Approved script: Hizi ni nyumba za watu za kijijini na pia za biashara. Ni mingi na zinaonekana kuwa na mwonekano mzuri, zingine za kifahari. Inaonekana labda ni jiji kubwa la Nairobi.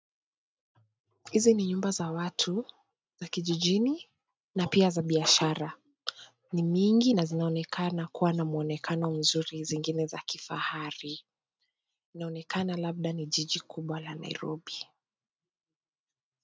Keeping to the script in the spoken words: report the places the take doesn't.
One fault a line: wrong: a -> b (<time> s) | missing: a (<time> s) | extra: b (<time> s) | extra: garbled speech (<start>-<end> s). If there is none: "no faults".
no faults